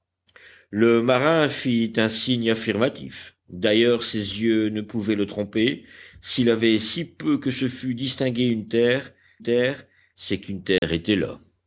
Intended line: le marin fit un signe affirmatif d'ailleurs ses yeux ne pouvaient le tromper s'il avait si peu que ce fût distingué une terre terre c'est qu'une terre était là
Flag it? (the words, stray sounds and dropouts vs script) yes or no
yes